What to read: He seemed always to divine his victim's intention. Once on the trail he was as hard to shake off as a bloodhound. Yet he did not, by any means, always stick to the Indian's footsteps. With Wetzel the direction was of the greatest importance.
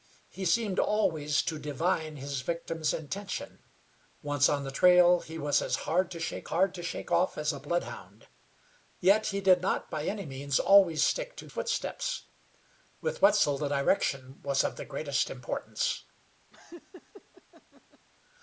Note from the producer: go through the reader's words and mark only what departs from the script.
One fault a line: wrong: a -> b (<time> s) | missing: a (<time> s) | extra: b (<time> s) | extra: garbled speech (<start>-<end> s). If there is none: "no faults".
extra: hard to shake (6.5 s)
missing: the Indian's (11.5 s)